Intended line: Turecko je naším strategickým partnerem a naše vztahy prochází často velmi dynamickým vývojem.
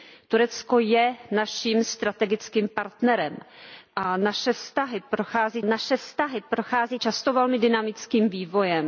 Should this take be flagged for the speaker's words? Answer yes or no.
yes